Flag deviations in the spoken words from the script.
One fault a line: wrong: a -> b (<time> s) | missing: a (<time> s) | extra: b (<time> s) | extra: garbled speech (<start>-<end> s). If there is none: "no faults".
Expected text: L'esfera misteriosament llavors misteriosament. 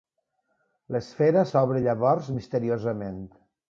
wrong: misteriosament -> s'obre (1.5 s)